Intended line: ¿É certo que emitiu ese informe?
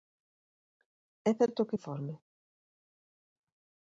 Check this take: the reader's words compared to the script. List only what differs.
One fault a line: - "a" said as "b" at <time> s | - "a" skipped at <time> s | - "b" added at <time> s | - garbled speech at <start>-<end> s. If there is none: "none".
- "emitiu ese" skipped at 1.8 s